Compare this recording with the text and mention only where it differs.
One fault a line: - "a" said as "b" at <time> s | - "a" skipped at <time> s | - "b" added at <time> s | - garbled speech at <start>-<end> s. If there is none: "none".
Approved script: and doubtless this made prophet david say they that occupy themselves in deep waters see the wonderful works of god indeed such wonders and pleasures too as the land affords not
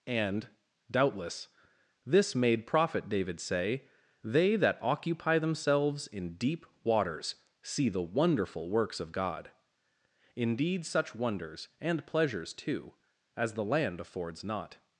none